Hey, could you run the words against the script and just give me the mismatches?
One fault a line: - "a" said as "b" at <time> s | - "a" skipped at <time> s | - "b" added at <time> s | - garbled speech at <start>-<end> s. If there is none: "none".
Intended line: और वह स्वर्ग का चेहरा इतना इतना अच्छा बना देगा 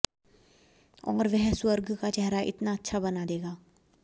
- "इतना" skipped at 2.7 s